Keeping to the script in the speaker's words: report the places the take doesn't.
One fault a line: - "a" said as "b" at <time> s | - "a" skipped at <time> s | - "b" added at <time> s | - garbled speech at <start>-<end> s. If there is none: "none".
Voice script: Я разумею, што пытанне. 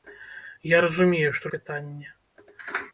none